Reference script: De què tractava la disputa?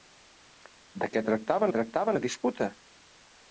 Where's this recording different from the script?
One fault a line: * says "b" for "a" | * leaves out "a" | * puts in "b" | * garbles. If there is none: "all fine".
* puts in "tractava"